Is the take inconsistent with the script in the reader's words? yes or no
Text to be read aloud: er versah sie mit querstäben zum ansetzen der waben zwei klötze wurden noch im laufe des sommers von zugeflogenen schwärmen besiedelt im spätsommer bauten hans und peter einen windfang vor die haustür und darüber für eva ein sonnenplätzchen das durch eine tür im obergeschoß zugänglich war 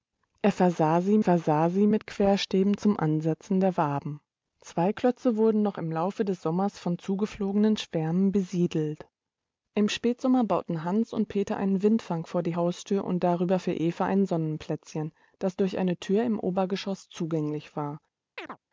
yes